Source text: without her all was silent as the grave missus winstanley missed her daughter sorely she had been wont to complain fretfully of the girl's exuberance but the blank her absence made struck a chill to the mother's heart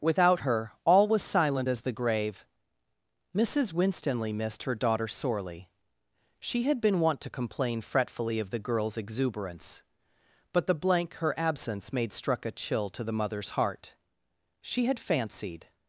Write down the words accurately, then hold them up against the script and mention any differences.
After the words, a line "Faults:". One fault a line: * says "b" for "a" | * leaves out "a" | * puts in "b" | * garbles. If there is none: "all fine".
without her all was silent as the grave missus winstanley missed her daughter sorely she had been wont to complain fretfully of the girl's exuberance but the blank her absence made struck a chill to the mother's heart she had fancied
Faults:
* puts in "she had fancied"